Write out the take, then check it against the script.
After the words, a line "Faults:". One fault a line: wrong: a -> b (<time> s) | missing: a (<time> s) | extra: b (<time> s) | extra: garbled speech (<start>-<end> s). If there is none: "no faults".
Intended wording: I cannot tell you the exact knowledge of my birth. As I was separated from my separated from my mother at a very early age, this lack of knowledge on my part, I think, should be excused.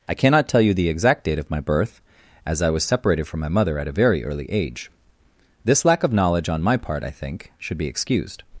I cannot tell you the exact date of my birth. As I was separated from my mother at a very early age, this lack of knowledge on my part, I think, should be excused.
Faults:
wrong: knowledge -> date (1.2 s)
missing: separated from my (3.5 s)